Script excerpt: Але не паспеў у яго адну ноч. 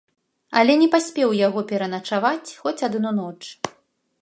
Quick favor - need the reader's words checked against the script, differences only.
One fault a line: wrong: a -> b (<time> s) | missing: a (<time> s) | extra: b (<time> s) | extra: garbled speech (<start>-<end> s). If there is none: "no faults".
extra: пераначаваць хоць (1.7 s)